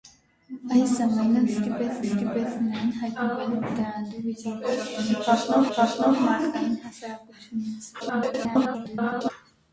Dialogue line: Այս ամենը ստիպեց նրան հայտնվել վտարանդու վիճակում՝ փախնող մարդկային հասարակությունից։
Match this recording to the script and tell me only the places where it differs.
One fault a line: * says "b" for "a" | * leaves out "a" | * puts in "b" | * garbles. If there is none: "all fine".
* puts in "ստիպեց"
* puts in "փախնող"
* garbles